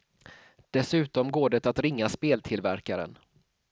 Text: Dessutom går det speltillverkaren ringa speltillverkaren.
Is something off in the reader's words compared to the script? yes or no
yes